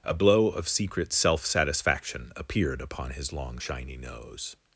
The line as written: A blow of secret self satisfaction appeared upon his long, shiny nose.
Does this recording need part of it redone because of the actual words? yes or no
no